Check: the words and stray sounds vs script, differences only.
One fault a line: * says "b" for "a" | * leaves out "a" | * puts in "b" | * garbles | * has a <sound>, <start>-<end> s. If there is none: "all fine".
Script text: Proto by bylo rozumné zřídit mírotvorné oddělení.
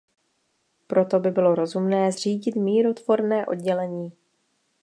all fine